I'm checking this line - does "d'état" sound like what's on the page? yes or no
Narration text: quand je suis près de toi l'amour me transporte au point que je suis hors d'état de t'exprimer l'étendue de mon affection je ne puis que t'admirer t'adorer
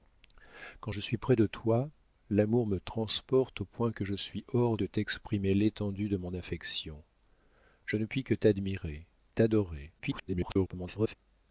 no